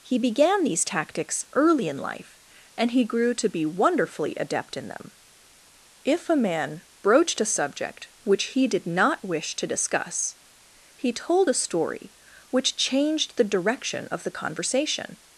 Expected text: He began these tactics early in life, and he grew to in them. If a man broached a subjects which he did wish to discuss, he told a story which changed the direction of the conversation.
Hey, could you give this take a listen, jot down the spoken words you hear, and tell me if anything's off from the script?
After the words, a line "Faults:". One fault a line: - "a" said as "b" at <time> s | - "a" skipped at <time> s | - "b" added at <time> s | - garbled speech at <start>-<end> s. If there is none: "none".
He began these tactics early in life, and he grew to be wonderfully adept in them. If a man broached a subject which he did not wish to discuss, he told a story which changed the direction of the conversation.
Faults:
- "be wonderfully adept" added at 3.5 s
- "subjects" said as "subject" at 7.4 s
- "not" added at 8.9 s